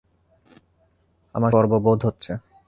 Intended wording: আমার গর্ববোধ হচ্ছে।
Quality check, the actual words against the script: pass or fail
pass